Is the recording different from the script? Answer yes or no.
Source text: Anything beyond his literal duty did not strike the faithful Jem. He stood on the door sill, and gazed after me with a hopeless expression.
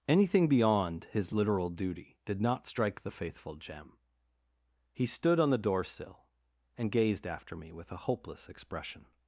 no